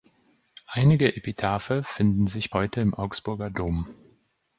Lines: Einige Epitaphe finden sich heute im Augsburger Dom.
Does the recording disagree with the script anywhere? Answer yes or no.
no